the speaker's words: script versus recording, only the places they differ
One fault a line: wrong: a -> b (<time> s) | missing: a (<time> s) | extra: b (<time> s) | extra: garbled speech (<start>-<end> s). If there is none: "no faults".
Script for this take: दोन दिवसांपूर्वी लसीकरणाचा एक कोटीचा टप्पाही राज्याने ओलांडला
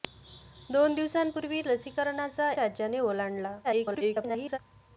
missing: एक कोटीचा टप्पाही (2.5 s)
extra: garbled speech (3.6-4.6 s)